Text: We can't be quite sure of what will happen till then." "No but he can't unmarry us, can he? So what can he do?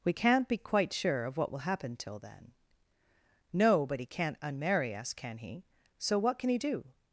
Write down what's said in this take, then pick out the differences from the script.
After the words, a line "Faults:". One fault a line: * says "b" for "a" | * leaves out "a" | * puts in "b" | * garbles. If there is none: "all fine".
We can't be quite sure of what will happen till then." "No but he can't unmarry us, can he? So what can he do?
Faults:
all fine